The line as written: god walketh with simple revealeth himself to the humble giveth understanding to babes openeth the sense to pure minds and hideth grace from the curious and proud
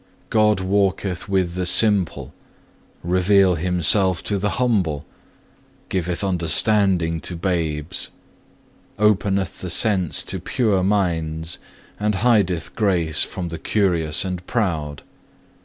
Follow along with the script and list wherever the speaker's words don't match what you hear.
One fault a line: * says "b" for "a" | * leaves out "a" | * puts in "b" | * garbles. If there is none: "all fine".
* puts in "the"